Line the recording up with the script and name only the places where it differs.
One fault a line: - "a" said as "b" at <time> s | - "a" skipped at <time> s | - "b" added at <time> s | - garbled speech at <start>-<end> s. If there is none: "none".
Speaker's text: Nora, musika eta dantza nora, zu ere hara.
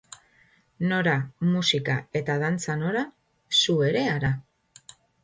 none